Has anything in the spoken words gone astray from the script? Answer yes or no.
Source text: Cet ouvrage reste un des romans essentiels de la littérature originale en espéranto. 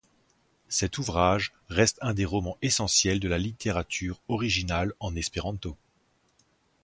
no